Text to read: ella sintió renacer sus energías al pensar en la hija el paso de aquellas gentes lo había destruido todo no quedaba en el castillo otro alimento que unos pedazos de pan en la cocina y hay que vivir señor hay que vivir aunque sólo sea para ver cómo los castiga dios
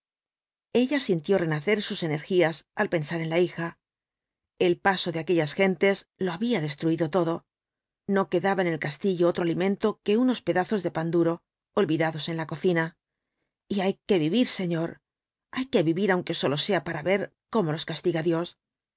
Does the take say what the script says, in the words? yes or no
no